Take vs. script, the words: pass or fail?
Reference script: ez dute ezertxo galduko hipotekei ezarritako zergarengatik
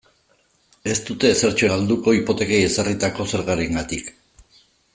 pass